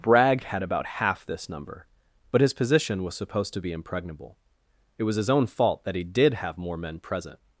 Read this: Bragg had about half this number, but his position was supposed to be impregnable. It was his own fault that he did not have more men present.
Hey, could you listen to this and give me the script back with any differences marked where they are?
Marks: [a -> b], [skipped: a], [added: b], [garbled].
Bragg had about half this number, but his position was supposed to be impregnable. It was his own fault that he did [skipped: not] have more men present.